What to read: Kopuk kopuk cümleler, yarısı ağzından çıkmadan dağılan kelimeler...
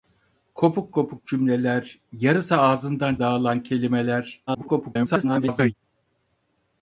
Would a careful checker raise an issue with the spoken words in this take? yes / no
yes